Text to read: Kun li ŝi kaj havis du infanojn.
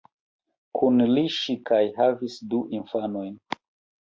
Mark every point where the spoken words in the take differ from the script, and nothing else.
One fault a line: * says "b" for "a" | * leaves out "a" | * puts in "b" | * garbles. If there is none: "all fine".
all fine